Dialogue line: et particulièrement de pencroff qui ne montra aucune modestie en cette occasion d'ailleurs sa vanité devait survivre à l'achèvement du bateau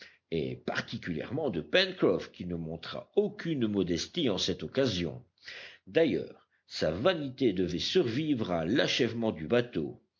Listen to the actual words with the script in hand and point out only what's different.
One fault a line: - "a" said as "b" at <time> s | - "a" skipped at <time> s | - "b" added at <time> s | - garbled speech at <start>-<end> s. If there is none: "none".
none